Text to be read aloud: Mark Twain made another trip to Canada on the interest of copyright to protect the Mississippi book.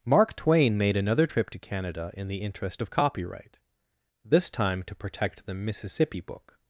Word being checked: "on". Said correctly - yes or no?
no